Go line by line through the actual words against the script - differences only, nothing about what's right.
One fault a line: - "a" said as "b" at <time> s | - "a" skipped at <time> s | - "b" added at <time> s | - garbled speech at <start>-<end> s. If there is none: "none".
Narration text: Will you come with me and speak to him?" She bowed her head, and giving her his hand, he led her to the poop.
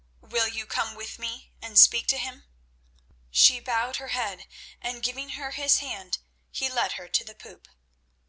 none